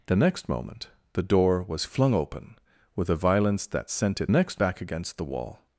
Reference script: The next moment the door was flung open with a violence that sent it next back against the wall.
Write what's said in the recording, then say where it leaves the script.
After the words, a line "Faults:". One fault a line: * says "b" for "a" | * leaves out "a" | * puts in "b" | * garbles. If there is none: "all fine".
The next moment the door was flung open with a violence that sent it next back against the wall.
Faults:
all fine